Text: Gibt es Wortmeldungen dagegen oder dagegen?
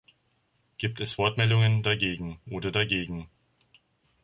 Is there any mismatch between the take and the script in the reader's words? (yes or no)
no